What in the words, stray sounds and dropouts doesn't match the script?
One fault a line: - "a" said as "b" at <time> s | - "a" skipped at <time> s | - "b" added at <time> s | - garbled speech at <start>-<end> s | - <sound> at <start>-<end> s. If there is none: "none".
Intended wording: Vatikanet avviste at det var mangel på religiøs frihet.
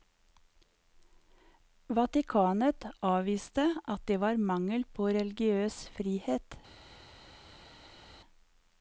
none